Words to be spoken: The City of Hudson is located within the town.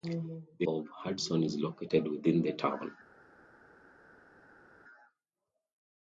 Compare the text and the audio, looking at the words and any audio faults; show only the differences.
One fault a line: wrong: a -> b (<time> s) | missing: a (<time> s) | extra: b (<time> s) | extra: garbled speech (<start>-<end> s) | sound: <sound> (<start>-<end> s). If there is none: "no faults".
missing: City (0.7 s)